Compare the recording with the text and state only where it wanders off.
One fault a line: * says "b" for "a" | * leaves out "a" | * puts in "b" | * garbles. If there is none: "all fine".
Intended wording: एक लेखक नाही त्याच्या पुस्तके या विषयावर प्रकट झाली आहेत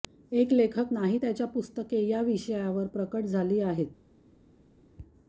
all fine